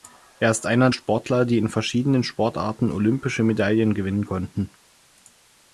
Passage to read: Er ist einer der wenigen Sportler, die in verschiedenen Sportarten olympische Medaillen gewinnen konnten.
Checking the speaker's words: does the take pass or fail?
fail